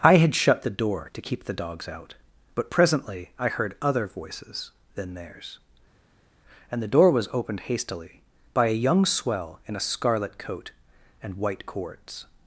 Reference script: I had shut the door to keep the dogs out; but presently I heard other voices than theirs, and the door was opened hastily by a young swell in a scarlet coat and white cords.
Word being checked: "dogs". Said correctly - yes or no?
yes